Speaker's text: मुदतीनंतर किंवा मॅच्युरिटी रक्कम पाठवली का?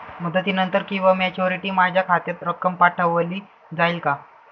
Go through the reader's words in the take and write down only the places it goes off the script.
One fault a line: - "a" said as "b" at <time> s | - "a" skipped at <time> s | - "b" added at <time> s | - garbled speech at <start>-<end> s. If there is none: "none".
- "माझ्या खात्यात" added at 1.7 s
- "जाईल" added at 3.7 s